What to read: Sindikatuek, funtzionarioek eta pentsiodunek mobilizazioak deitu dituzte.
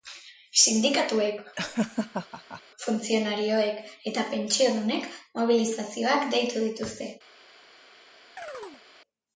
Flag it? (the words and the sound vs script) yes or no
yes